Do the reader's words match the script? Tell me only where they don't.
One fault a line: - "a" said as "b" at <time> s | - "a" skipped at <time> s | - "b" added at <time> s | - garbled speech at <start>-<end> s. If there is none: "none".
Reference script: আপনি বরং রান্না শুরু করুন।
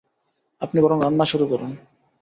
none